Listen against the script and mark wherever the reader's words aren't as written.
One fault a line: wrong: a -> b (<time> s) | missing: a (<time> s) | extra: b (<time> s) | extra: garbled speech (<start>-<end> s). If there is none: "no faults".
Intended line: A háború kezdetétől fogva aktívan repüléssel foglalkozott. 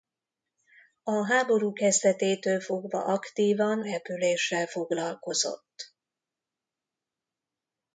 no faults